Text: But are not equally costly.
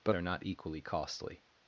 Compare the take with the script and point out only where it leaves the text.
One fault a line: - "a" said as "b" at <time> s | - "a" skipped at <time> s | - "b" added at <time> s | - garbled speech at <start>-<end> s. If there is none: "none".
none